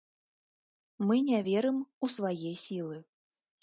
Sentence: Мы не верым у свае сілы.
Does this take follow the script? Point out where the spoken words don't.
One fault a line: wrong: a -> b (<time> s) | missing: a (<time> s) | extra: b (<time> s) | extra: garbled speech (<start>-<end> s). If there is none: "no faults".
no faults